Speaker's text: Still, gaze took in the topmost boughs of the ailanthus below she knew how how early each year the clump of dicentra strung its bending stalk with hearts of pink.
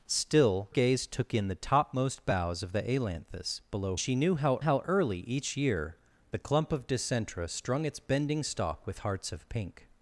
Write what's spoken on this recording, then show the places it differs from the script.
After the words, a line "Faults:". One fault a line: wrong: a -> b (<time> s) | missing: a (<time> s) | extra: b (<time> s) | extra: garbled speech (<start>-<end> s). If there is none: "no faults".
Still, gaze took in the topmost boughs of the ailanthus below she knew how how early each year the clump of dicentra strung its bending stalk with hearts of pink.
Faults:
no faults